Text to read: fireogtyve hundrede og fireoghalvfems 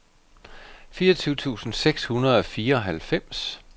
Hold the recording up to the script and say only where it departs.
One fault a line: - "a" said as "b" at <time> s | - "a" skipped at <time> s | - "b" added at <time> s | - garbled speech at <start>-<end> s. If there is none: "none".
- "tusind seks" added at 1.3 s